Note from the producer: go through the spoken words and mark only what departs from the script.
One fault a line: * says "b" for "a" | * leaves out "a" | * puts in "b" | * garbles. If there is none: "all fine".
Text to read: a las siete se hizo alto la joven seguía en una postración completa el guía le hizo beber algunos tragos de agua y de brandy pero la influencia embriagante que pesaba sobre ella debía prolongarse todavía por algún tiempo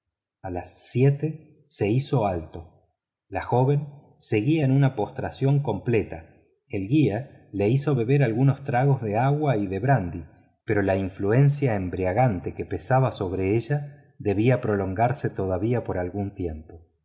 all fine